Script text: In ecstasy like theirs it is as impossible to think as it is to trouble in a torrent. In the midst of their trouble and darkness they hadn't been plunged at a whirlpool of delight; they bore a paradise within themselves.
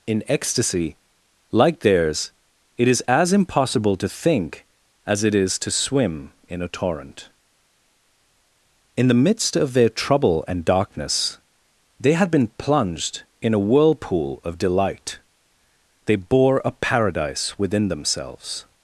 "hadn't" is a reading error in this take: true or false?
true